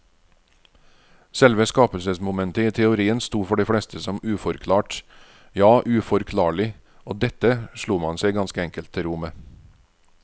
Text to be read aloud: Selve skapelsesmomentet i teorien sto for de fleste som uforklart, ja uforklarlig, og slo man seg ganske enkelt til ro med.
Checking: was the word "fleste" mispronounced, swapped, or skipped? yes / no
no